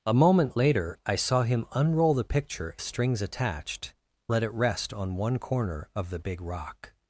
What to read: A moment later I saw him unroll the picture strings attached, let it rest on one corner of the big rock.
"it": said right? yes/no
yes